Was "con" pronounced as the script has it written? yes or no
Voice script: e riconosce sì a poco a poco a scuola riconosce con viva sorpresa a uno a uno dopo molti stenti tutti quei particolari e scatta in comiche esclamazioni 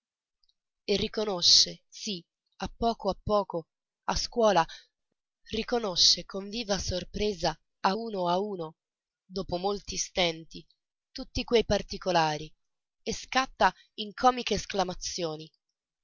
yes